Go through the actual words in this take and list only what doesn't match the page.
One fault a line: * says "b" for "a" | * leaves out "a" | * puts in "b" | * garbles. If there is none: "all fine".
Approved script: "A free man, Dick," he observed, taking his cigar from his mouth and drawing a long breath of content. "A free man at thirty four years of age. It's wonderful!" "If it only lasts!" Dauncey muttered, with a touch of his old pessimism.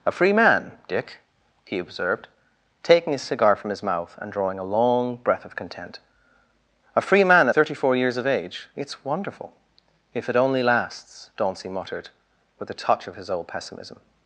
* leaves out "at"